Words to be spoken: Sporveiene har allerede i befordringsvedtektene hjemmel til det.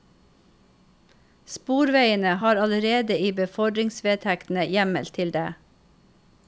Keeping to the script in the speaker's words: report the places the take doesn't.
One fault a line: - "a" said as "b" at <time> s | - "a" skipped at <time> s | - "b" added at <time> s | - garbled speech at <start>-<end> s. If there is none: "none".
none